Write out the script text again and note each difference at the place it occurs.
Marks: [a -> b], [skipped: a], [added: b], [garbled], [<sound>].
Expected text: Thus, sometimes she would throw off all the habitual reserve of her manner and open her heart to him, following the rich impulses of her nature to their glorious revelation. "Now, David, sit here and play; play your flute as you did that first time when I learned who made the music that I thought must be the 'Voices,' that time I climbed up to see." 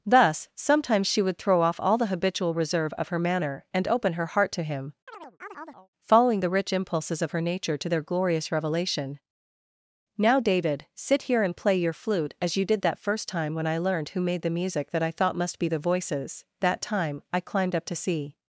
Thus, sometimes she would throw off all the habitual reserve of her manner and open her heart to him, [chirp] following the rich impulses of her nature to their glorious revelation. "Now, David, sit here and play; [skipped: play] your flute as you did that first time when I learned who made the music that I thought must be the 'Voices,' that time I climbed up to see."